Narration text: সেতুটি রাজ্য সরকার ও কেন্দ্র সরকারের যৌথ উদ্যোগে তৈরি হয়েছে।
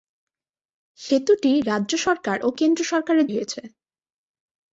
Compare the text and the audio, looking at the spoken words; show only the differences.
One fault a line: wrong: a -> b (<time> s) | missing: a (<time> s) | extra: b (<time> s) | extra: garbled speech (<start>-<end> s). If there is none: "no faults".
missing: যৌথ উদ্যোগে তৈরি (3.3 s)